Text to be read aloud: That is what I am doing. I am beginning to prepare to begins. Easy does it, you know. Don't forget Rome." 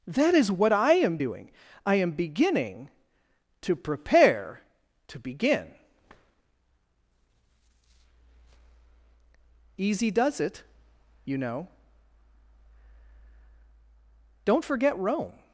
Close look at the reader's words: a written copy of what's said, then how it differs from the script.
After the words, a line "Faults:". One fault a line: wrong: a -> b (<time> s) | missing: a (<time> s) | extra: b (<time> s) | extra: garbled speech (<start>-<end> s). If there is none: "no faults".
That is what I am doing. I am beginning to prepare to begin. Easy does it, you know. Don't forget Rome."
Faults:
wrong: begins -> begin (5.2 s)